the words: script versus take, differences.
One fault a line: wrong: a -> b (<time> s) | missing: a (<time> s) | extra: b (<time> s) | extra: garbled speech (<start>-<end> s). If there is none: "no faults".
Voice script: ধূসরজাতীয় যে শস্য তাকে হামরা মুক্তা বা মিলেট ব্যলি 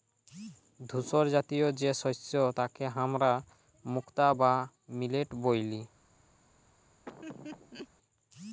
no faults